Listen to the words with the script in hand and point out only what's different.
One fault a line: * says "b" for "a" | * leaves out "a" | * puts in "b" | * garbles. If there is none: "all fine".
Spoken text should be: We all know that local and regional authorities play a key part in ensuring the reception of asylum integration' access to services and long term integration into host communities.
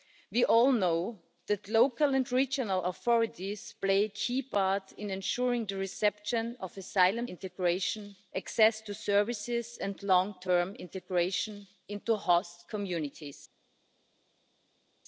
all fine